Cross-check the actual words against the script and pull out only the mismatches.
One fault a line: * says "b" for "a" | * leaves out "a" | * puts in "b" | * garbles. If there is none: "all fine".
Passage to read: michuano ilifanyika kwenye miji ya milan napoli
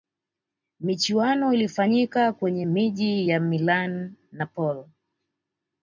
all fine